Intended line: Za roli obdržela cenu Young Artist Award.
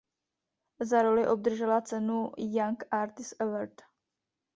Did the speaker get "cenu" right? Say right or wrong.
right